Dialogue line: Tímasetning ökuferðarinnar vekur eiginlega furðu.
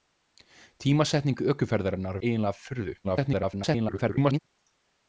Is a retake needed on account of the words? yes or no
yes